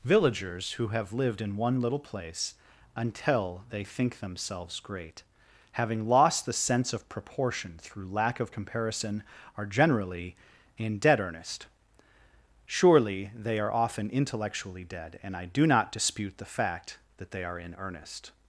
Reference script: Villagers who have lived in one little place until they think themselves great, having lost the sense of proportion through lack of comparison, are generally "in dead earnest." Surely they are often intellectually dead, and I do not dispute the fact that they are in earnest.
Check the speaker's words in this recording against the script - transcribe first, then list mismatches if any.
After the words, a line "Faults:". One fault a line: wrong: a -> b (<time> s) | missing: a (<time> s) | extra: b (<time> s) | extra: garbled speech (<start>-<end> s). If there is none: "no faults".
Villagers who have lived in one little place until they think themselves great, having lost the sense of proportion through lack of comparison, are generally "in dead earnest." Surely they are often intellectually dead, and I do not dispute the fact that they are in earnest.
Faults:
no faults